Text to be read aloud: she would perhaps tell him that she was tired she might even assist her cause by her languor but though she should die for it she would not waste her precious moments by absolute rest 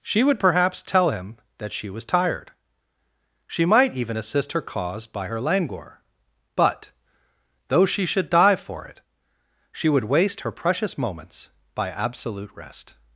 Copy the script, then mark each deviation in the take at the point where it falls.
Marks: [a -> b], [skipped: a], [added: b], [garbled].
she would perhaps tell him that she was tired she might even assist her cause by her languor but though she should die for it she would [skipped: not] waste her precious moments by absolute rest